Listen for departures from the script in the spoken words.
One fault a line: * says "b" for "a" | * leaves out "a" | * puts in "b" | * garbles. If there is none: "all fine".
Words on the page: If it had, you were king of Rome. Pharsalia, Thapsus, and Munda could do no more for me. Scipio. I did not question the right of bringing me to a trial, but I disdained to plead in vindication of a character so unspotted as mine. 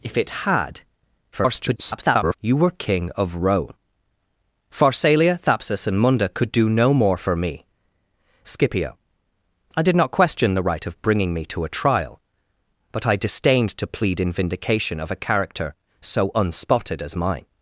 * garbles